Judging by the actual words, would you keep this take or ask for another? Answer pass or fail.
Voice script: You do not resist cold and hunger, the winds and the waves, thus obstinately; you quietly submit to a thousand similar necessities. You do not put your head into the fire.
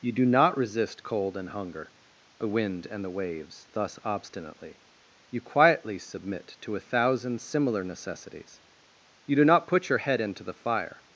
fail